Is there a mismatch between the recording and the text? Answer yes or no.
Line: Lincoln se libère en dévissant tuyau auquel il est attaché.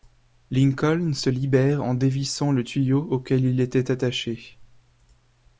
yes